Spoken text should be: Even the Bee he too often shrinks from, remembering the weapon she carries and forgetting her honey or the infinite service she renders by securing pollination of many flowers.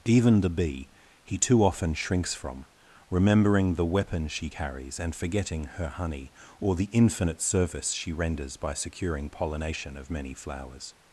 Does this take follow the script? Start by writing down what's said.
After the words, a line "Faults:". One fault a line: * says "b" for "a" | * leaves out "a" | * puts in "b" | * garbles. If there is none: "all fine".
Even the Bee he too often shrinks from, remembering the weapon she carries and forgetting her honey or the infinite service she renders by securing pollination of many flowers.
Faults:
all fine